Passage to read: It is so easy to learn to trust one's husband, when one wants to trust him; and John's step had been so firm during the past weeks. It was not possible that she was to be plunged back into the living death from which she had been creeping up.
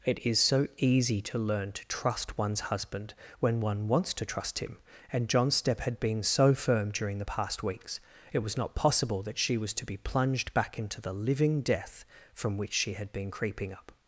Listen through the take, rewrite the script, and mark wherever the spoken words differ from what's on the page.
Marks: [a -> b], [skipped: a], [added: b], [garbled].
It is so easy to learn to trust one's husband, when one wants to trust him; and John's step had been so firm during the past weeks. It was not possible that she was to be plunged back into the living death from which she had been creeping up.